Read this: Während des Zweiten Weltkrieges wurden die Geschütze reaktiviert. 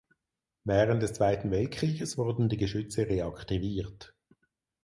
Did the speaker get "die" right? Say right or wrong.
right